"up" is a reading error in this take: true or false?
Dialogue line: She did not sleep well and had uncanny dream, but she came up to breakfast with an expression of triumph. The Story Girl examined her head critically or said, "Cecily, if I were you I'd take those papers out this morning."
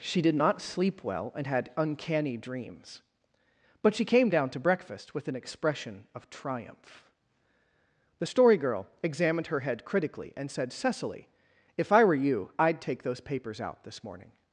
true